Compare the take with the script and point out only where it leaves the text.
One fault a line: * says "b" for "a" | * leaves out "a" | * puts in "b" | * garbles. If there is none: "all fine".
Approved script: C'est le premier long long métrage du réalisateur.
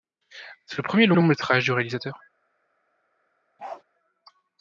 all fine